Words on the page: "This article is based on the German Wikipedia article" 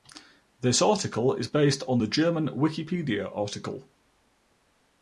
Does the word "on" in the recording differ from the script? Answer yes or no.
no